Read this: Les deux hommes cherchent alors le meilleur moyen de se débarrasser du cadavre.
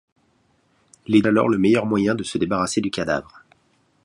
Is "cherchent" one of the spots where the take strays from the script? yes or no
yes